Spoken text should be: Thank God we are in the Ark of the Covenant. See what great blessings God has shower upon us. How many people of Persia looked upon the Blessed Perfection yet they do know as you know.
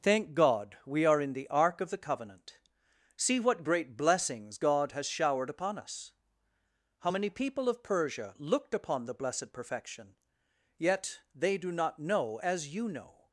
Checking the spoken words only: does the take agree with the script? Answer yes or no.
no